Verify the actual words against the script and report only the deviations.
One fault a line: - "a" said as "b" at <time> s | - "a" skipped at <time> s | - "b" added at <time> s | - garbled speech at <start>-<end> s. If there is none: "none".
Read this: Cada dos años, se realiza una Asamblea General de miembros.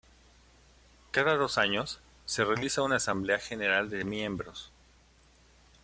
none